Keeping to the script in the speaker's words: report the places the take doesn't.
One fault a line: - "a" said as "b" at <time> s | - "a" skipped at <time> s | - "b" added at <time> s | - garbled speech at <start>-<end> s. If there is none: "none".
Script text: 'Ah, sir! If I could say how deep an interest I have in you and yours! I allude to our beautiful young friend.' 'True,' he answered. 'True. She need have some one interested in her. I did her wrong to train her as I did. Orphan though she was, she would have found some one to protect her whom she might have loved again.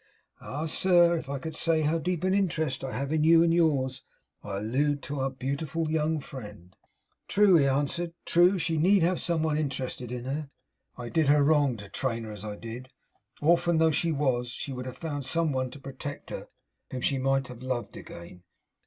none